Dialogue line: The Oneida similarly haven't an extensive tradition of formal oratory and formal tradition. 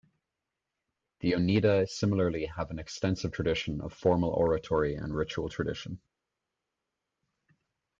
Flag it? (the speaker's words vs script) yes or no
yes